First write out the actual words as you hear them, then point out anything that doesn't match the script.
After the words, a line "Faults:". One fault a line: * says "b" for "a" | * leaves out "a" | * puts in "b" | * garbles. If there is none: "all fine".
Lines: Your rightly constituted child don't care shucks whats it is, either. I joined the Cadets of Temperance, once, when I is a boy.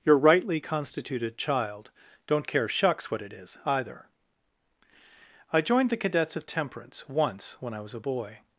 Your rightly constituted child don't care shucks what it is, either. I joined the Cadets of Temperance, once, when I was a boy.
Faults:
* says "what" for "whats"
* says "was" for "is"